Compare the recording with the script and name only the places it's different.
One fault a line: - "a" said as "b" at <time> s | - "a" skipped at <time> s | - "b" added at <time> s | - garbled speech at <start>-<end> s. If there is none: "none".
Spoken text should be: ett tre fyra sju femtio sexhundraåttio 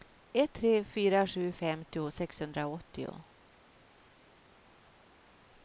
none